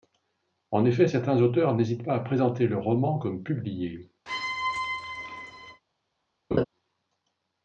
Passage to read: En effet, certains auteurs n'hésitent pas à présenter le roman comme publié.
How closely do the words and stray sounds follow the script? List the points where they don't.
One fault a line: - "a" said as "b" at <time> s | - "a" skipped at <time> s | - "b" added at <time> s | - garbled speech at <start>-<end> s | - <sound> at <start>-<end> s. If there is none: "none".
- squeak at 4.3-5.8 s
- laugh at 6.5-6.6 s